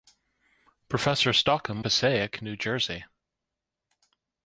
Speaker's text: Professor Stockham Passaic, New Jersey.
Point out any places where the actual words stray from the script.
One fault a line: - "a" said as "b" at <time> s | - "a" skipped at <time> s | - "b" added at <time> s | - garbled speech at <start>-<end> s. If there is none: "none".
none